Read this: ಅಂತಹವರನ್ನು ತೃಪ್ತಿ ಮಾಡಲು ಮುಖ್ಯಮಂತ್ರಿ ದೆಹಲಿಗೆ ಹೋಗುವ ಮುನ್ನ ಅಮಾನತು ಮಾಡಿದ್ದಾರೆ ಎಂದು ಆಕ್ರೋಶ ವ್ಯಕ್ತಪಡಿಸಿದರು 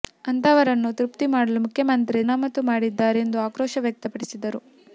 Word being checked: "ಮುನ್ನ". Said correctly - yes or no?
no